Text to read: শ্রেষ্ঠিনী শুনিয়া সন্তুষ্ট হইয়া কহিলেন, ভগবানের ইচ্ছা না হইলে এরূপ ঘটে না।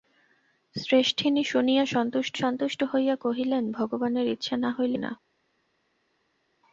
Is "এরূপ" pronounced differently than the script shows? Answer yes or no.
yes